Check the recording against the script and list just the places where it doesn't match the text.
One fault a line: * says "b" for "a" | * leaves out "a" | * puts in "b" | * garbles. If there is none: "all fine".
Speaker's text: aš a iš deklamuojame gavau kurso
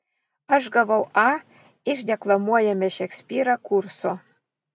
* puts in "gavau"
* says "šekspyrą" for "gavau"